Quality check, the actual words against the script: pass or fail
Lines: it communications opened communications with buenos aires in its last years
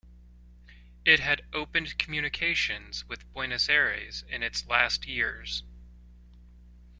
fail